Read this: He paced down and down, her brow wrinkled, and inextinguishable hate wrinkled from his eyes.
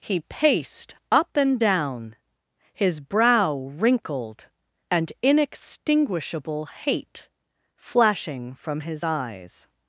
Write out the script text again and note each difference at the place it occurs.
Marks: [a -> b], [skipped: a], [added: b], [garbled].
He paced [down -> up] and down, [her -> his] brow wrinkled, and inextinguishable hate [wrinkled -> flashing] from his eyes.